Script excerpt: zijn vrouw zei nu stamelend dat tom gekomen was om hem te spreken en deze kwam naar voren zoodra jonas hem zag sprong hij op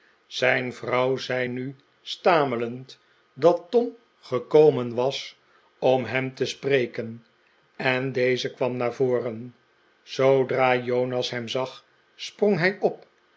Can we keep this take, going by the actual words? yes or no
yes